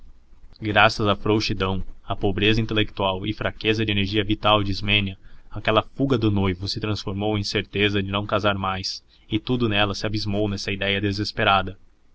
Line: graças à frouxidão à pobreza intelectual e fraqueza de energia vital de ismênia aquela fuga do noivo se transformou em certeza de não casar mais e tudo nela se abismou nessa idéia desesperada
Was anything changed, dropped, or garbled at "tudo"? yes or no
no